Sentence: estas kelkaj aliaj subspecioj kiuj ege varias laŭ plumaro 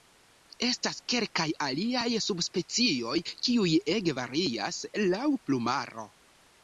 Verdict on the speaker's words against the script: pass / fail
pass